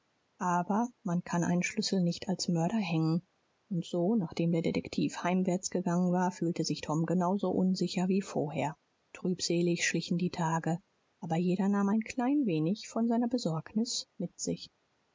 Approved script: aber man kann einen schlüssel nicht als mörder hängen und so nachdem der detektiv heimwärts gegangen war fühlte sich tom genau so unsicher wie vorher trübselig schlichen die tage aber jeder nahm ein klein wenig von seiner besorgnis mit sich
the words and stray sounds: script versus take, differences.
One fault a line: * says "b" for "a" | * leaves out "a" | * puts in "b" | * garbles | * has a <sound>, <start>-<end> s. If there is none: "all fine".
all fine